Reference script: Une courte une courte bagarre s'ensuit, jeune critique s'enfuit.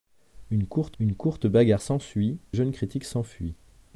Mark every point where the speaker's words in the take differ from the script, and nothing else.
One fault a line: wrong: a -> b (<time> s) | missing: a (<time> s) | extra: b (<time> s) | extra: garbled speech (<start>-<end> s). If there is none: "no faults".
no faults